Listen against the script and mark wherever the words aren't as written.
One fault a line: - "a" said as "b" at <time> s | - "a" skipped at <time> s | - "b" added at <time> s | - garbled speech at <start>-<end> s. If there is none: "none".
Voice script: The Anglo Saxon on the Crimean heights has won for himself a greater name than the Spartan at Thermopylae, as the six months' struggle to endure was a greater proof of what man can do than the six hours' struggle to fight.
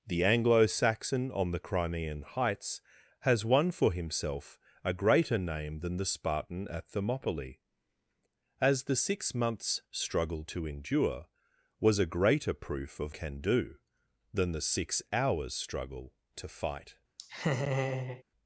- "what man" skipped at 13.2 s